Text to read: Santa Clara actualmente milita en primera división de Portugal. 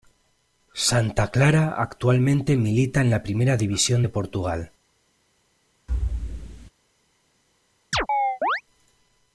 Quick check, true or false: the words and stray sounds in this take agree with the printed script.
false